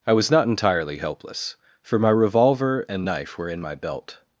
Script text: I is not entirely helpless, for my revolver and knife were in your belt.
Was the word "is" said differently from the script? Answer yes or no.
yes